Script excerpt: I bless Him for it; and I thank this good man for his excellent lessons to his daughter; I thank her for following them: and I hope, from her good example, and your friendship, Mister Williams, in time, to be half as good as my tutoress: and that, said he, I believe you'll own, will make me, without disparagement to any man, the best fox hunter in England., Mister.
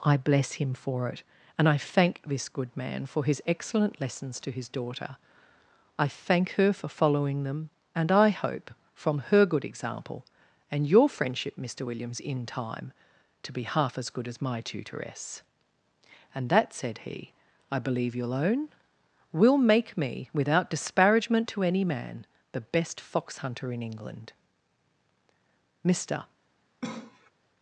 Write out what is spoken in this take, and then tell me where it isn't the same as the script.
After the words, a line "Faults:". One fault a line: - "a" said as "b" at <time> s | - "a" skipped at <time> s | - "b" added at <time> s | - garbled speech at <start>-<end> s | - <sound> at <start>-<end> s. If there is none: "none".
I bless Him for it; and I thank this good man for his excellent lessons to his daughter; I thank her for following them: and I hope, from her good example, and your friendship, Mister Williams, in time, to be half as good as my tutoress: and that, said he, I believe you'll own, will make me, without disparagement to any man, the best fox hunter in England., Mister.
Faults:
- cough at 26.8-27.3 s